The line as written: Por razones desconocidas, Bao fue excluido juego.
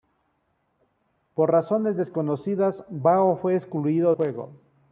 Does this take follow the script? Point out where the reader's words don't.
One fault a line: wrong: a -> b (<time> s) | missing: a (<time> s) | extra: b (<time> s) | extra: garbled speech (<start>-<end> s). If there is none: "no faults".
no faults